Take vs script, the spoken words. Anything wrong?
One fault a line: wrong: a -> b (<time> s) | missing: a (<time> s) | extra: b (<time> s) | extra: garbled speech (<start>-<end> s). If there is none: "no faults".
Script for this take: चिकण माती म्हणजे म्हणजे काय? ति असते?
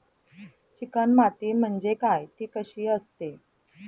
missing: म्हणजे (1.9 s)
extra: कशी (2.5 s)